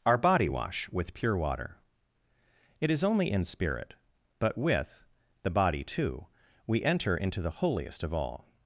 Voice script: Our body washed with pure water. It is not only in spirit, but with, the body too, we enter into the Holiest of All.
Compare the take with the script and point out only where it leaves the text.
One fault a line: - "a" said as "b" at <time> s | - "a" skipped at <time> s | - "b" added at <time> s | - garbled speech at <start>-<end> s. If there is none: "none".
- "washed" said as "wash" at 0.5 s
- "not" skipped at 3.0 s